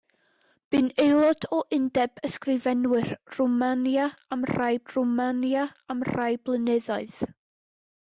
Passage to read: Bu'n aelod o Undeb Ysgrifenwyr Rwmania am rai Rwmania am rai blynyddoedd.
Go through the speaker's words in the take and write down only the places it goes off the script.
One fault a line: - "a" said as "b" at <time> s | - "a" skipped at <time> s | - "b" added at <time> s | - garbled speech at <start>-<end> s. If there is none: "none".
none